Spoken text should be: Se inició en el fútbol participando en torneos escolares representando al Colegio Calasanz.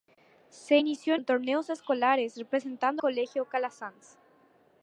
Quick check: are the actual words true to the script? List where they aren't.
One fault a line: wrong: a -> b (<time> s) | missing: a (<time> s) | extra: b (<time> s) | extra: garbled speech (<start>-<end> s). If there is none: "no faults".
missing: el fútbol participando (1.2 s)
missing: al (3.0 s)